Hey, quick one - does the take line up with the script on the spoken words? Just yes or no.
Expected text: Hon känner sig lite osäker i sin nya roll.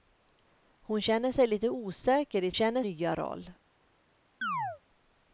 no